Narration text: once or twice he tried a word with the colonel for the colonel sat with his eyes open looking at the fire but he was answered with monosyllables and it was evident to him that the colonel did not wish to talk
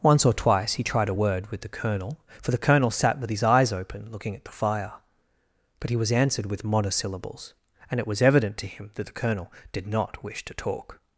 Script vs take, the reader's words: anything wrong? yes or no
no